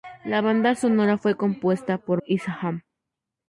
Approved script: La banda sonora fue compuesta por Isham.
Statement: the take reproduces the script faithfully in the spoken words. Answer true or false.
true